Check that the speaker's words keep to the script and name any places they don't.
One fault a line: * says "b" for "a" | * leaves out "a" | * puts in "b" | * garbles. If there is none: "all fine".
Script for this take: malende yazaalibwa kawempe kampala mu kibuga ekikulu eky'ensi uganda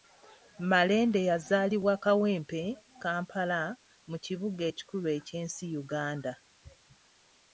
all fine